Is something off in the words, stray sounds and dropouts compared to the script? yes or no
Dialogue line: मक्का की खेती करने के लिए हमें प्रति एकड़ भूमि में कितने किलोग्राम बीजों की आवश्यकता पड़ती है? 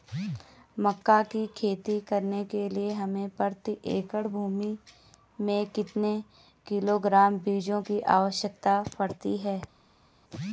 no